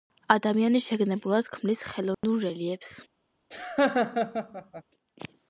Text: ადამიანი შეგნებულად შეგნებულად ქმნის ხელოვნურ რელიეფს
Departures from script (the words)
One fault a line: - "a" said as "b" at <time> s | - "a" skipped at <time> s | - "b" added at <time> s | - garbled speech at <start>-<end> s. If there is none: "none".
- "შეგნებულად" skipped at 1.5 s